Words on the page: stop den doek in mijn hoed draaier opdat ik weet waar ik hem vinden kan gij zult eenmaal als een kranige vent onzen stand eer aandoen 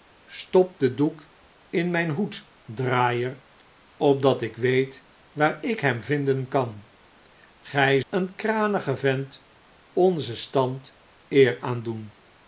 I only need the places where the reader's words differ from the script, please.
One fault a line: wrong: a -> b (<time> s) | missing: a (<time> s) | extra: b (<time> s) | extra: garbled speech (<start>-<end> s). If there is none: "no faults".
missing: zult eenmaal als (8.0 s)